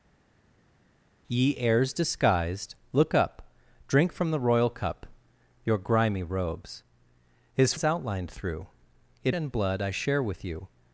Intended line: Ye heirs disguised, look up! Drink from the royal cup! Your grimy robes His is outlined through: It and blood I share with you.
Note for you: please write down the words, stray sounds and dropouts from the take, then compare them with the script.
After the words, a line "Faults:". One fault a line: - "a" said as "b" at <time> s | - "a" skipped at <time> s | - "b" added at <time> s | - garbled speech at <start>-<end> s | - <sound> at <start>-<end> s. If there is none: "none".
Ye heirs disguised, look up! Drink from the royal cup! Your grimy robes His is outlined through: It and blood I share with you.
Faults:
none